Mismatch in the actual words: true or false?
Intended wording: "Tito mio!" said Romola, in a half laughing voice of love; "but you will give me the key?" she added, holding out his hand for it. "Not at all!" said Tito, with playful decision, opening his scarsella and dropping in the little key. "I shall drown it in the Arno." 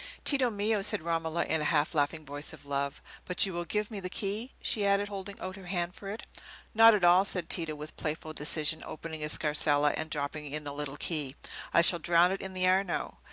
true